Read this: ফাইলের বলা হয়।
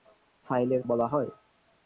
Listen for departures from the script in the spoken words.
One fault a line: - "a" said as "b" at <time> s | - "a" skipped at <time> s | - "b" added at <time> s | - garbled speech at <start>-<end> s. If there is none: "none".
none